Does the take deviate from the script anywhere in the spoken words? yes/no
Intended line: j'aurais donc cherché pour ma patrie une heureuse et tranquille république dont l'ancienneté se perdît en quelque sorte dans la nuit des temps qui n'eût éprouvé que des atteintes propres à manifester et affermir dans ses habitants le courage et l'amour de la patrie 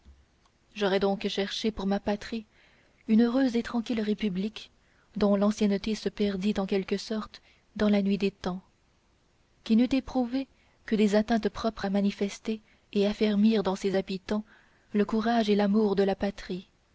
no